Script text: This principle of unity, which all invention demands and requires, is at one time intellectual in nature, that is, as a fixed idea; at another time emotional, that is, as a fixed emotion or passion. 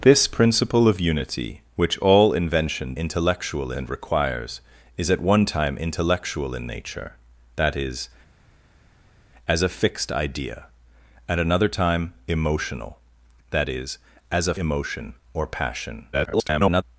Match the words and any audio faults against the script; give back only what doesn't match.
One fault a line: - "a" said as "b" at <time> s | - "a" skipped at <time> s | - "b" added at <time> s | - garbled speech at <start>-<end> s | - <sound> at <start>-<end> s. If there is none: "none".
- "demands" said as "intellectual" at 2.9 s
- "fixed" skipped at 14.5 s
- garbled speech at 16.1-16.8 s